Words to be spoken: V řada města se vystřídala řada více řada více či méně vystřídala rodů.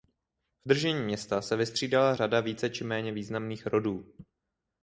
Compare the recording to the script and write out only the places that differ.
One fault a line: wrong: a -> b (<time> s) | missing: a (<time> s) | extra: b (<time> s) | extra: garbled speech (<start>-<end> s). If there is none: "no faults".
wrong: řada -> držení (0.7 s)
missing: řada více (2.7 s)
wrong: vystřídala -> významných (3.1 s)